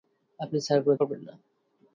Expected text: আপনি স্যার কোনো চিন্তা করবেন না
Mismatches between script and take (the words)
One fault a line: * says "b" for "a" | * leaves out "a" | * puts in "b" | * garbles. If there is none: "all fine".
* leaves out "চিন্তা"